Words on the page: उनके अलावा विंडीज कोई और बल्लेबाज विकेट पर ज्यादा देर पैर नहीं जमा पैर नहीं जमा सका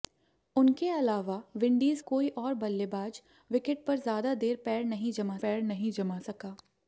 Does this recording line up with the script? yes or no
yes